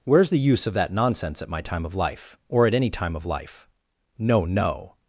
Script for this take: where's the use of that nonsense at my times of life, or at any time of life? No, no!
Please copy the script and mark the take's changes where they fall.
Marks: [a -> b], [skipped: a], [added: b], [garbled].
where's the use of that nonsense at my [times -> time] of life, or at any time of life? No, no!